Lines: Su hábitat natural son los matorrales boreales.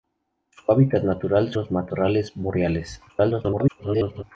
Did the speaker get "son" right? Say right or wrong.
wrong